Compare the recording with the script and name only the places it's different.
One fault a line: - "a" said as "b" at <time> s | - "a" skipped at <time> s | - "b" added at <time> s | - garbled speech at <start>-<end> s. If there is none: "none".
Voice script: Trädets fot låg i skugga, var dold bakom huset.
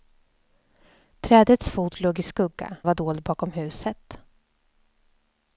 none